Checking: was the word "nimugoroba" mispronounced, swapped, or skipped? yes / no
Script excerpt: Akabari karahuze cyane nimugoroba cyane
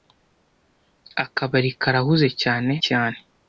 yes